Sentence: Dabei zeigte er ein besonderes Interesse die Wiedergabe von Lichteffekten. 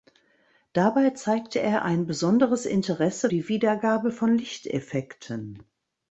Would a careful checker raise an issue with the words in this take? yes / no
no